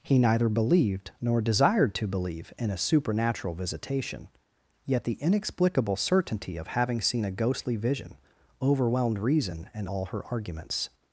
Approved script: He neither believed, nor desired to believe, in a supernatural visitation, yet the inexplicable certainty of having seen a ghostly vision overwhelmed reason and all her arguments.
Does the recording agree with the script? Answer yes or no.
yes